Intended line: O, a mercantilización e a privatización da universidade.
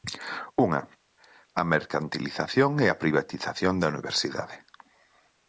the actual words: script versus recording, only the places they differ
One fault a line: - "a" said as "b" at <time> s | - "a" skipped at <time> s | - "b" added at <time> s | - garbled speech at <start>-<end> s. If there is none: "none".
- "O" said as "Unha" at 0.7 s